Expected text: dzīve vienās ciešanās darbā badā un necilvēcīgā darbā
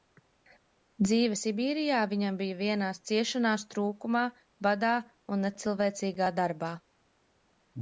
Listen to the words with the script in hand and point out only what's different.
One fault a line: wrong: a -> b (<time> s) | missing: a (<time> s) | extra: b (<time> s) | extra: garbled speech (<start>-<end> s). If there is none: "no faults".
extra: sibīrijā viņam bija (1.4 s)
wrong: darbā -> trūkumā (3.7 s)